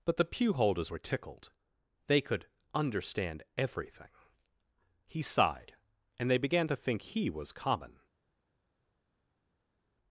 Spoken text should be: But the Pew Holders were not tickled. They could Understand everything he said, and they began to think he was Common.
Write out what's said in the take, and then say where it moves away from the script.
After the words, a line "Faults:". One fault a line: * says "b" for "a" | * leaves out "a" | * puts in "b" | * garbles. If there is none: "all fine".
But the Pew Holders were tickled. They could Understand everything he sighed, and they began to think he was Common.
Faults:
* leaves out "not"
* says "sighed" for "said"